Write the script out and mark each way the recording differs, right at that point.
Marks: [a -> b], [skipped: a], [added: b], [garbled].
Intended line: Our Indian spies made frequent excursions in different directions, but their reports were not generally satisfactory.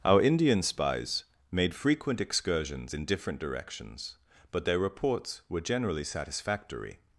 Our Indian spies made frequent excursions in different directions, but their reports were [skipped: not] generally satisfactory.